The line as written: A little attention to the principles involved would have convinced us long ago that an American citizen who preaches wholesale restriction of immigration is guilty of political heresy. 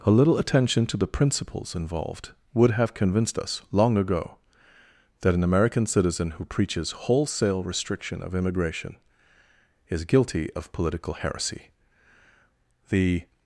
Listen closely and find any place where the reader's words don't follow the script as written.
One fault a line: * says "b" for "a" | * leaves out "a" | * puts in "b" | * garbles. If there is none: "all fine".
* puts in "The"